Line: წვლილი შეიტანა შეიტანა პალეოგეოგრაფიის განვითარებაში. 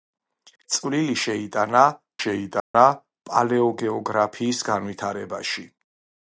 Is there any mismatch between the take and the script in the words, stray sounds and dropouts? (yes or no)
yes